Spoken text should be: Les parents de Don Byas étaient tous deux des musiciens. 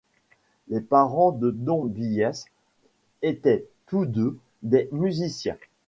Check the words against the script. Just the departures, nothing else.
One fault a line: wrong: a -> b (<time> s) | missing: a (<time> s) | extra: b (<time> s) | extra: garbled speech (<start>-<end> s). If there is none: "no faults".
no faults